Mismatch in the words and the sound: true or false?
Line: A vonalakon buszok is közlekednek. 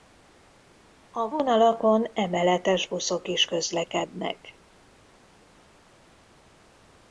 true